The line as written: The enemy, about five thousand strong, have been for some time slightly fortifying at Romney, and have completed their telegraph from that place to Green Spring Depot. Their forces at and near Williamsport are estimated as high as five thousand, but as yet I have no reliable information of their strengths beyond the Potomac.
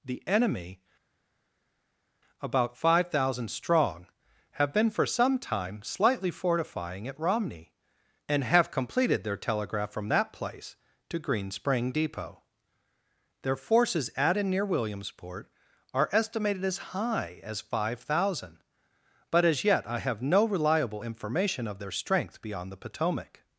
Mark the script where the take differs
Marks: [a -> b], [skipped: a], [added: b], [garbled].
The enemy, about five thousand strong, have been for some time slightly fortifying at Romney, and have completed their telegraph from that place to Green Spring Depot. Their forces at and near Williamsport are estimated as high as five thousand, but as yet I have no reliable information of their [strengths -> strength] beyond the Potomac.